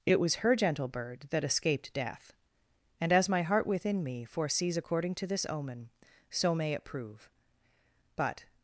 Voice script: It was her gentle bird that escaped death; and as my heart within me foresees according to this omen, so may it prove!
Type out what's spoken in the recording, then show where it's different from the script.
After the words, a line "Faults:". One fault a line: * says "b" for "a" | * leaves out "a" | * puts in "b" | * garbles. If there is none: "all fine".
It was her gentle bird that escaped death; and as my heart within me foresees according to this omen, so may it prove! But
Faults:
* puts in "But"